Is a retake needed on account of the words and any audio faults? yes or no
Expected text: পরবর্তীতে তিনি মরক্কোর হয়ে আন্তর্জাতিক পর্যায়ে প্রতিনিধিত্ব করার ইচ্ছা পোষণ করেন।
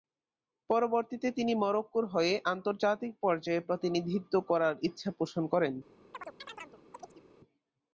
yes